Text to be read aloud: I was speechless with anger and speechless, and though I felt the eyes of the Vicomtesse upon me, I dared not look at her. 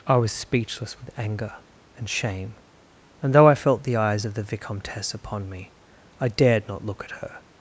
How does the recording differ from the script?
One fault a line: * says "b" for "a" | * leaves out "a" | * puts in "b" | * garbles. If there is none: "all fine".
* says "shame" for "speechless"